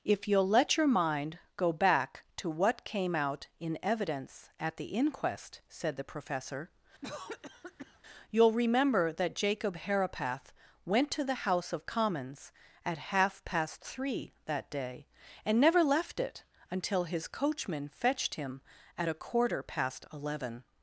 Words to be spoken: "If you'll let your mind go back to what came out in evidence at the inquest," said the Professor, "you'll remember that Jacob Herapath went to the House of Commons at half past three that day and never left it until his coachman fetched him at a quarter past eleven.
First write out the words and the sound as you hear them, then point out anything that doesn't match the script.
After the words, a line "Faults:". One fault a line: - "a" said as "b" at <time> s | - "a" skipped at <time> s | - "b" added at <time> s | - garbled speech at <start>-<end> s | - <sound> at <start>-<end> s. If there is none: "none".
"If you'll let your mind go back to what came out in evidence at the inquest," said the Professor, "you'll remember that Jacob Herapath went to the House of Commons at half past three that day and never left it until his coachman fetched him at a quarter past eleven.
Faults:
- cough at 7.0-8.0 s